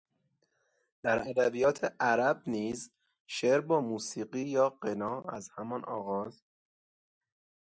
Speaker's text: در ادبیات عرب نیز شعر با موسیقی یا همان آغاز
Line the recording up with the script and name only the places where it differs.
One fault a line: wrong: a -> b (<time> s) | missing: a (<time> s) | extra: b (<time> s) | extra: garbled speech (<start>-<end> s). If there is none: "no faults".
extra: غنا از (4.7 s)